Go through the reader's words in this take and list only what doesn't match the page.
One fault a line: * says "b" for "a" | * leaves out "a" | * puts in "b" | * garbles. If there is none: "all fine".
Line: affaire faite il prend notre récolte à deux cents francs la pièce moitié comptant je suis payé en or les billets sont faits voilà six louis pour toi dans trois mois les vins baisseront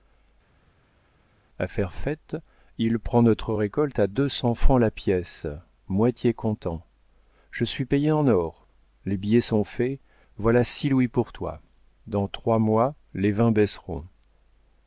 all fine